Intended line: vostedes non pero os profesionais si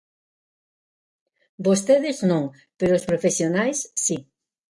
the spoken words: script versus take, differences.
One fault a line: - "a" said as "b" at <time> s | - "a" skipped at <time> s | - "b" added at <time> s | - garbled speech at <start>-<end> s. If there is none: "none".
none